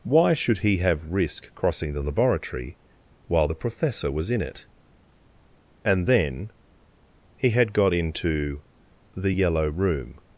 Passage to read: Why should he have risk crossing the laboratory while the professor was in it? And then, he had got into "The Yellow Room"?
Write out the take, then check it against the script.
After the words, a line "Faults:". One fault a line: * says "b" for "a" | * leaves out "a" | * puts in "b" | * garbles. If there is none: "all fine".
Why should he have risk crossing the laboratory while the professor was in it? And then, he had got into "The Yellow Room"?
Faults:
all fine